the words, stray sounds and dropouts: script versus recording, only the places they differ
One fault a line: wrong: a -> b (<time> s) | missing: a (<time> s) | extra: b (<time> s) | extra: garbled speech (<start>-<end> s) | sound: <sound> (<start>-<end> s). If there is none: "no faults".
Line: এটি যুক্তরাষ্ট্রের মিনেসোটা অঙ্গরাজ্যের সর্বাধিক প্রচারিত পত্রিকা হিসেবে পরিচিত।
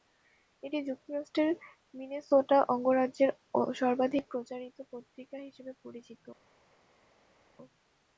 no faults